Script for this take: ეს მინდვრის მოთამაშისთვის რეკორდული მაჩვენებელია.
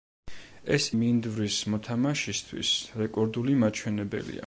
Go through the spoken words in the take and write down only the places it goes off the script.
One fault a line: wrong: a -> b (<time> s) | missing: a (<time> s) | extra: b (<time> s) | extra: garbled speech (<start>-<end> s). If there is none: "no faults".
no faults